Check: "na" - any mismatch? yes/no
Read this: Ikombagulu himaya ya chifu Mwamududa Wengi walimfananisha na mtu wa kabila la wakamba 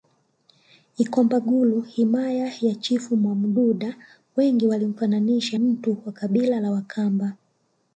yes